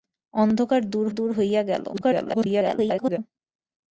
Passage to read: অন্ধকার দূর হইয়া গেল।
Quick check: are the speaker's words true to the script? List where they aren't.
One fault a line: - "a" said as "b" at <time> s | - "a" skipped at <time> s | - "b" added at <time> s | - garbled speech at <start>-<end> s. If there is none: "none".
- "দূর" added at 1.1 s
- garbled speech at 1.9-3.2 s